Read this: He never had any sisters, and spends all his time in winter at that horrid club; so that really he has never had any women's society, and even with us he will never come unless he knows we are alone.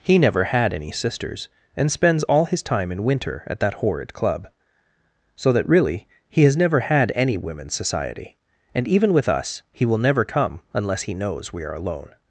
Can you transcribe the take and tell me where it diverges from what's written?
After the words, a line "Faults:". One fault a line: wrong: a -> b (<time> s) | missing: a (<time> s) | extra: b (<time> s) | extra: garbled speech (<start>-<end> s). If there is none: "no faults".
He never had any sisters, and spends all his time in winter at that horrid club; so that really he has never had any women's society, and even with us he will never come unless he knows we are alone.
Faults:
no faults